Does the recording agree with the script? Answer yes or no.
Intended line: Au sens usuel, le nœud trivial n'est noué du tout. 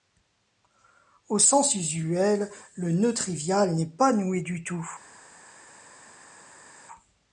no